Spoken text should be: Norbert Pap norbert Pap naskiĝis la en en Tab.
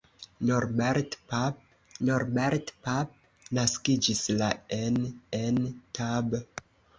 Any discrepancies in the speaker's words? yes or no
no